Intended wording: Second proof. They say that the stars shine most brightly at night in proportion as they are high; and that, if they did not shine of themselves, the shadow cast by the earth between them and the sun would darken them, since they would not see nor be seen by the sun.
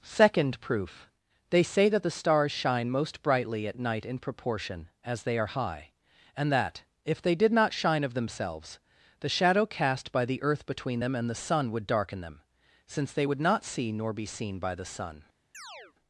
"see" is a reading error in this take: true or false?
false